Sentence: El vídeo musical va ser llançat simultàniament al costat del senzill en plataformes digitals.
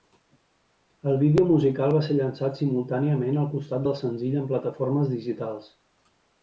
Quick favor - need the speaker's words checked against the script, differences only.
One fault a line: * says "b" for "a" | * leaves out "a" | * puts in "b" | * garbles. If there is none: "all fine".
all fine